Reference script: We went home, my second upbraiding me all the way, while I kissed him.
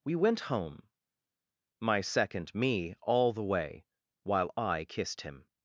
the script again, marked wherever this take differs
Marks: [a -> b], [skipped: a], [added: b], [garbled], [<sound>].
We went home, my second [skipped: upbraiding] me all the way, while I kissed him.